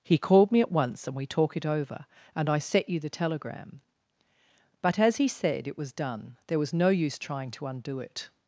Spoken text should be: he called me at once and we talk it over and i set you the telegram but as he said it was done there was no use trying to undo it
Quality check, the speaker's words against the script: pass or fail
pass